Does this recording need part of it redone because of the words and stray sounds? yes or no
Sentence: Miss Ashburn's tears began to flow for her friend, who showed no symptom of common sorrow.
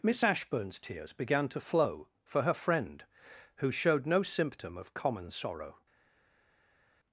no